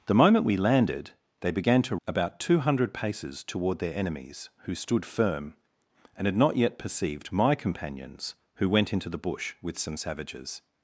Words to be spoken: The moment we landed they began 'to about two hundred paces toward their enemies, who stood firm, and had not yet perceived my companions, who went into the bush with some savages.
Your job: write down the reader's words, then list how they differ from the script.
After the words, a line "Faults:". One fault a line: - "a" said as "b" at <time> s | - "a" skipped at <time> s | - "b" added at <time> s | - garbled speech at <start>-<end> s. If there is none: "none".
The moment we landed they began 'to about two hundred paces toward their enemies, who stood firm, and had not yet perceived my companions, who went into the bush with some savages.
Faults:
none